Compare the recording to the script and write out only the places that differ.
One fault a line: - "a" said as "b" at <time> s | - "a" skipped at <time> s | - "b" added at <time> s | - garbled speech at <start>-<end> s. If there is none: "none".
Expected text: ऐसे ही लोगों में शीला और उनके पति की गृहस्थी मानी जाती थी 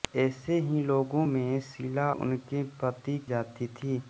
- "और" skipped at 2.1 s
- "की गृहस्थी मानी" skipped at 3.2 s